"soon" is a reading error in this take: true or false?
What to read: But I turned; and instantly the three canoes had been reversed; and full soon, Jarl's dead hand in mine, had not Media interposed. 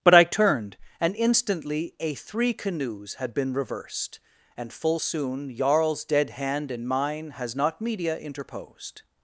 false